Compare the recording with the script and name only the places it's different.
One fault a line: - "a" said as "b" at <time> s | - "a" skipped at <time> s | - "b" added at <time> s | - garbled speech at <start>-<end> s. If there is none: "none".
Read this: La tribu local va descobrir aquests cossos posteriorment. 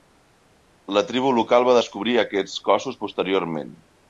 none